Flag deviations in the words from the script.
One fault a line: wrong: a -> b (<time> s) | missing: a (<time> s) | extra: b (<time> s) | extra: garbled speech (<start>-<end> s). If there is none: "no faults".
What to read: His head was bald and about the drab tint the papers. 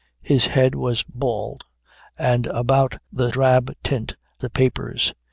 no faults